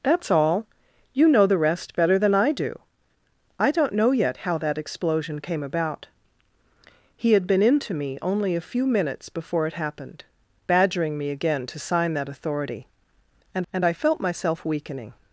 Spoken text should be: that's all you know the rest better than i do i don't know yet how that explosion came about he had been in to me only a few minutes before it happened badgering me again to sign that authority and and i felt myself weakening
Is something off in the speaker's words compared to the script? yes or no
no